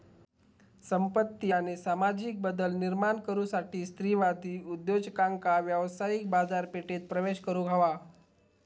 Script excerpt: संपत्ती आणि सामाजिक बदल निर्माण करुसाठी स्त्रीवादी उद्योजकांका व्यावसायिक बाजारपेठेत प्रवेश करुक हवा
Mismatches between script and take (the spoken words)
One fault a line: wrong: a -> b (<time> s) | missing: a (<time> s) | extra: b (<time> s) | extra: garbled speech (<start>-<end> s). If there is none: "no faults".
no faults